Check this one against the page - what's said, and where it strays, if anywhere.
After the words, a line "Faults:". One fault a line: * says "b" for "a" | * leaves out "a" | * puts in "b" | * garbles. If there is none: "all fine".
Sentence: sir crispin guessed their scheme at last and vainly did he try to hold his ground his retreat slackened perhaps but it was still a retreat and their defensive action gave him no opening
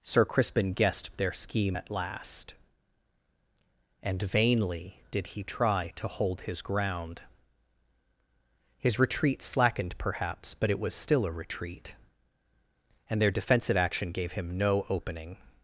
sir crispin guessed their scheme at last and vainly did he try to hold his ground his retreat slackened perhaps but it was still a retreat and their defensive action gave him no opening
Faults:
all fine